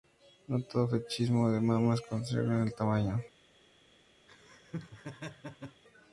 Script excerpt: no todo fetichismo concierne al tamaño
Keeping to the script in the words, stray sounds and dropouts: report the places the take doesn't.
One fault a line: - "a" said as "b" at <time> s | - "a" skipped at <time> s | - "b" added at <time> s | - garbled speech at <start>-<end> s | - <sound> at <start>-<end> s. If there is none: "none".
- "de mamas" added at 1.5 s
- laugh at 4.3-5.8 s